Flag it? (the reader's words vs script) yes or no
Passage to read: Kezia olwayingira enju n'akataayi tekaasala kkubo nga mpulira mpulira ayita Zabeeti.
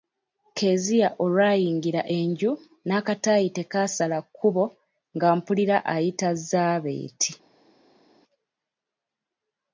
yes